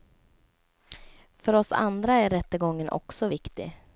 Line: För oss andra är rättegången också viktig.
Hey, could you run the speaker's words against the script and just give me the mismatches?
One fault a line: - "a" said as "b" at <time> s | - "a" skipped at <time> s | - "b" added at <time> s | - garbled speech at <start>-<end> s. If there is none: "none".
none